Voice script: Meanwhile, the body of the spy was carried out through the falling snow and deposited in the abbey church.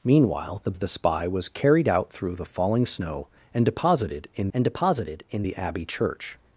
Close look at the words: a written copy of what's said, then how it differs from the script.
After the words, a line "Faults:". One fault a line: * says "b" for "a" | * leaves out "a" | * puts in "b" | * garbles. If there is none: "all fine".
Meanwhile, the of the spy was carried out through the falling snow and deposited in and deposited in the abbey church.
Faults:
* leaves out "body"
* puts in "and deposited in"